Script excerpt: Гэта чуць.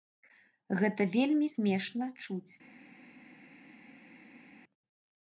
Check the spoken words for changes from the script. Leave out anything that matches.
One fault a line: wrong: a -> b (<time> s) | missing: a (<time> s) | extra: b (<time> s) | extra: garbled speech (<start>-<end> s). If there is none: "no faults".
extra: вельмі смешна (1.1 s)